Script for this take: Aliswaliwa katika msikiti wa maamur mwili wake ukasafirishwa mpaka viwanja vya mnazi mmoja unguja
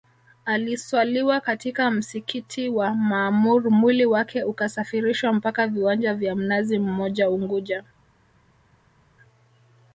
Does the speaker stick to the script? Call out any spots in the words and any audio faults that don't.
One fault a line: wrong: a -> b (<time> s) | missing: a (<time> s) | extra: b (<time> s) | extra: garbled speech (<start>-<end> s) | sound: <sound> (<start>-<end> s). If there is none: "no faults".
no faults